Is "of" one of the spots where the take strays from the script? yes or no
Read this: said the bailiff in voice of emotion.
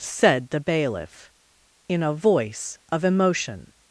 no